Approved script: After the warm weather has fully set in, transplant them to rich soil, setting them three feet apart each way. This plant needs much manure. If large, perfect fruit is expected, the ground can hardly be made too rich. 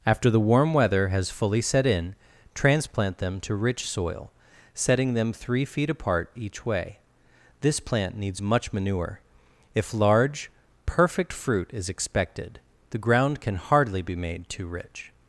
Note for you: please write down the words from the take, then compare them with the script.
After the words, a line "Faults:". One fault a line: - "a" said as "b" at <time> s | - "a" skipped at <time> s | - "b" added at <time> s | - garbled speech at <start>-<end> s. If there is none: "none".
After the warm weather has fully set in, transplant them to rich soil, setting them three feet apart each way. This plant needs much manure. If large, perfect fruit is expected, the ground can hardly be made too rich.
Faults:
none